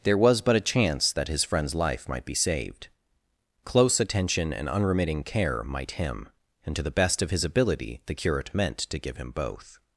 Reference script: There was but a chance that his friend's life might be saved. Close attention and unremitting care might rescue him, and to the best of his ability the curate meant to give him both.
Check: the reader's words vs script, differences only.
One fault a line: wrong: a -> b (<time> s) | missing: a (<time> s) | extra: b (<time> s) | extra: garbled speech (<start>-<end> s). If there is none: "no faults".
missing: rescue (5.9 s)